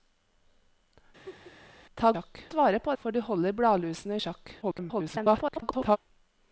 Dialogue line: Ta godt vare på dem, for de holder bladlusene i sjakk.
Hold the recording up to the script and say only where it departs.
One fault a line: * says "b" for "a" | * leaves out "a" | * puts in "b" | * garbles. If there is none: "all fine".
* says "sjakk" for "godt"
* leaves out "dem"
* garbles